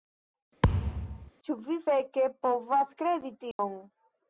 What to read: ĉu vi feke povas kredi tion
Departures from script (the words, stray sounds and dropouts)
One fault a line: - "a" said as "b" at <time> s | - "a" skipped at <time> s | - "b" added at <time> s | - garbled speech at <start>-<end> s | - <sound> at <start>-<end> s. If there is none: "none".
- thud at 0.6-1.3 s
- dropout at 3.5-3.6 s